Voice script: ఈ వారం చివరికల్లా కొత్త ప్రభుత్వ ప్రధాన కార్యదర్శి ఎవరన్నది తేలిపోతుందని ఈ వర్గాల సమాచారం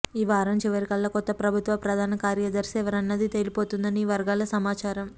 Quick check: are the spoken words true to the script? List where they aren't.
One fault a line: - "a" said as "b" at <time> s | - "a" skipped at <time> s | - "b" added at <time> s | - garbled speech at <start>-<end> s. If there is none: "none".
none